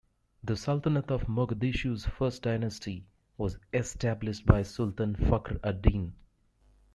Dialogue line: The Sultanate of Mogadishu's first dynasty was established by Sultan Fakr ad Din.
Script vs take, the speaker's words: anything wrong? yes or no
no